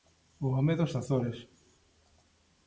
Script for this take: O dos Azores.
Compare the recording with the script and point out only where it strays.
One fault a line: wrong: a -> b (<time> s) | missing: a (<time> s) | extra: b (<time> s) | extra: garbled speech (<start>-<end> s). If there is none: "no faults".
extra: home (0.6 s)